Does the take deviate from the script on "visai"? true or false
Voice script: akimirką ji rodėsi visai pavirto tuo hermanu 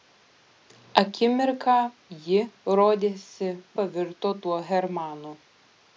true